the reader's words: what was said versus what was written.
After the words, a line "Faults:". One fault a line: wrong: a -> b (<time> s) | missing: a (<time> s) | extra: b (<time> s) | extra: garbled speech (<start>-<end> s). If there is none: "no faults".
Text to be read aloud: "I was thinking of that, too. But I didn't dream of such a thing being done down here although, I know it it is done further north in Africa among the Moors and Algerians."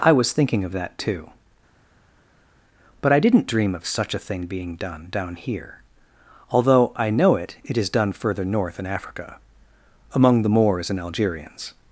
"I was thinking of that, too. But I didn't dream of such a thing being done down here although, I know it it is done further north in Africa among the Moors and Algerians."
Faults:
no faults